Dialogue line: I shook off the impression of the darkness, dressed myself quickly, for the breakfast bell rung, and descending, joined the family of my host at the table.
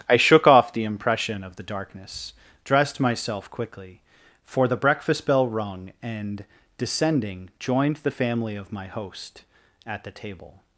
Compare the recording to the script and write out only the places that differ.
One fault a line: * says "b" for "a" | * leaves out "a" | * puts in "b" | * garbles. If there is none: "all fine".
all fine